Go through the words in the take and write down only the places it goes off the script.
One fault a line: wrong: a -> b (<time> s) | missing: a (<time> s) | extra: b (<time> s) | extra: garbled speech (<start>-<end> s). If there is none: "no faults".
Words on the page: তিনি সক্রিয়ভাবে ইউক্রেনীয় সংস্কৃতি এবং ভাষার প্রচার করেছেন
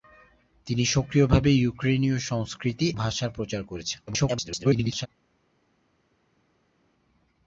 missing: এবং (2.9 s)
extra: garbled speech (4.1-5.1 s)